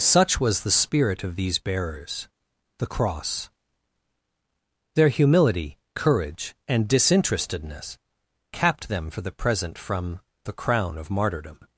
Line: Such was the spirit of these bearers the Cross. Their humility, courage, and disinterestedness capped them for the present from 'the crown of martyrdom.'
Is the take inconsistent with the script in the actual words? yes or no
no